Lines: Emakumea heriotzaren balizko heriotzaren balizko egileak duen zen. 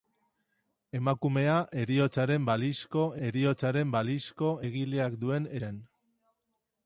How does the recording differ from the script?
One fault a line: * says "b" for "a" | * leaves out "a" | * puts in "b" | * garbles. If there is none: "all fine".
all fine